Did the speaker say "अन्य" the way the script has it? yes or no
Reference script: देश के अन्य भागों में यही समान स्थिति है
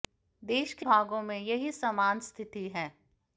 no